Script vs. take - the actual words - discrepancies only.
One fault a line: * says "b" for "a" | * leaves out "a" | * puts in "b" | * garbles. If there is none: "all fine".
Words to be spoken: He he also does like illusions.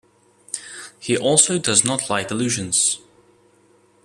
* leaves out "he"
* puts in "not"